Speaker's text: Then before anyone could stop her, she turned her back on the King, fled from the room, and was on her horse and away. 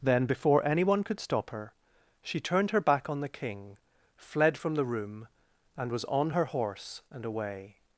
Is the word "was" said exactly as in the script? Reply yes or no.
yes